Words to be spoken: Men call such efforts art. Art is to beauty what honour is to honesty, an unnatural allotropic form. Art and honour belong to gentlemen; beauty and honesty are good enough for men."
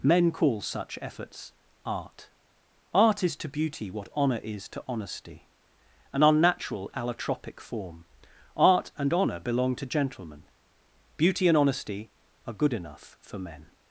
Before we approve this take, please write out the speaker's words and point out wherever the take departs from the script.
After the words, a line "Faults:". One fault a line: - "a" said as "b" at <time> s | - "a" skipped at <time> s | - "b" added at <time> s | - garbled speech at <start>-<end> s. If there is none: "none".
Men call such efforts art. Art is to beauty what honour is to honesty, an unnatural allotropic form. Art and honour belong to gentlemen; beauty and honesty are good enough for men."
Faults:
none